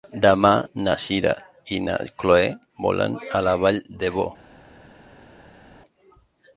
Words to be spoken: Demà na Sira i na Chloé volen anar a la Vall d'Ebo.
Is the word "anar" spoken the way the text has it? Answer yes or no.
no